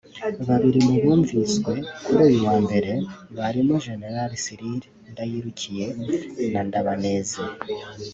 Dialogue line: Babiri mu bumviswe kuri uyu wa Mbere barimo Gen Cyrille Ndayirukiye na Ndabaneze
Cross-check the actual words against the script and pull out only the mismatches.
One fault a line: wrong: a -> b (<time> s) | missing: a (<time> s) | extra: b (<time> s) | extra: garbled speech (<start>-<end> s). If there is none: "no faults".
no faults